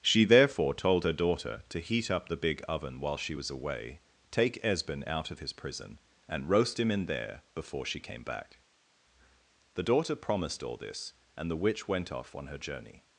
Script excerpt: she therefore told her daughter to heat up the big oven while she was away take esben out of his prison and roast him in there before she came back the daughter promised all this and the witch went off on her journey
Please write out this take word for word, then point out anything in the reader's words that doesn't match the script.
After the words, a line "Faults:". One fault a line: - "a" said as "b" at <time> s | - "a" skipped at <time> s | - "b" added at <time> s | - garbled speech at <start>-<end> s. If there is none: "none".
she therefore told her daughter to heat up the big oven while she was away take esben out of his prison and roast him in there before she came back the daughter promised all this and the witch went off on her journey
Faults:
none